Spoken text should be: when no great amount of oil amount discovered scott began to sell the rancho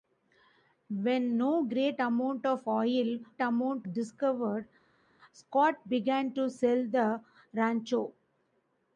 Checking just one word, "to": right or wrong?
right